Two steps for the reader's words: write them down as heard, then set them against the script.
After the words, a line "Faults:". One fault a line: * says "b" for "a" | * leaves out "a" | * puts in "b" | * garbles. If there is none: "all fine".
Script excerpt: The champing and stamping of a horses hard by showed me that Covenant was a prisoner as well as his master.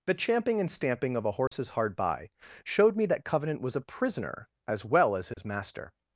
The champing and stamping of a horses hard by showed me that Covenant was a prisoner as well as his master.
Faults:
all fine